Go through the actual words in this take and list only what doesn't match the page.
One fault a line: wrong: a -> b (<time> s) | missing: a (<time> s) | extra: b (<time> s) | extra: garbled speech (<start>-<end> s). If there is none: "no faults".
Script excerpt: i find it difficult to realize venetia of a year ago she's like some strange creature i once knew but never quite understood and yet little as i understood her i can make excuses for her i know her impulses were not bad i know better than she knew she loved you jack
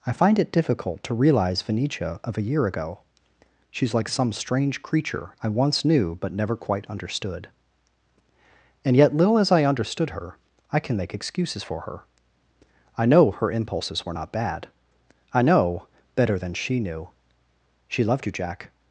no faults